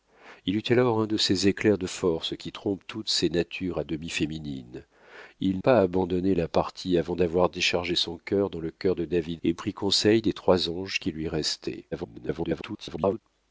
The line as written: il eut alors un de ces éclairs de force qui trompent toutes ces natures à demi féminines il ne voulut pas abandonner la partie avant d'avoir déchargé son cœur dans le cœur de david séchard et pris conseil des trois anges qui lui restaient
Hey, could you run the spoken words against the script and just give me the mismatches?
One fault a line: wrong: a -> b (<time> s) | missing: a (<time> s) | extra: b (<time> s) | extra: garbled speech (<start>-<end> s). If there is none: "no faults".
missing: ne voulut (5.6 s)
missing: séchard (9.4 s)
extra: garbled speech (11.9-13.2 s)